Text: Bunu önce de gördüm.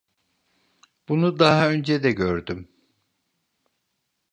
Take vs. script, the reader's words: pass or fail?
fail